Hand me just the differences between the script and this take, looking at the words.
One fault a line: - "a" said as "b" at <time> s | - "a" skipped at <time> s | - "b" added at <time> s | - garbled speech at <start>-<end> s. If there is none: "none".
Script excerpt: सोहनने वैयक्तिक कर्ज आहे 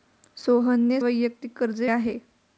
none